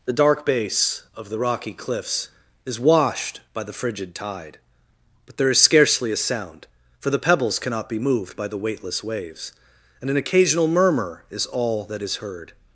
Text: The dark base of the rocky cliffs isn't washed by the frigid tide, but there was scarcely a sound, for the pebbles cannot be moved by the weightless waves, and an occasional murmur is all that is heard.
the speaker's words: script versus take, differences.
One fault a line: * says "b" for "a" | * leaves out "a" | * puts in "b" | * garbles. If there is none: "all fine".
* says "is" for "isn't"
* says "is" for "was"